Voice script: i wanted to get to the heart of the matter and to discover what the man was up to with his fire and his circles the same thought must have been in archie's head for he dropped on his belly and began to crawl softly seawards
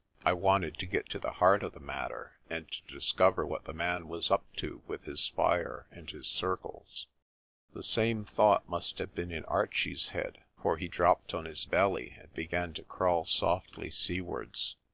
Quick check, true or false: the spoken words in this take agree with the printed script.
true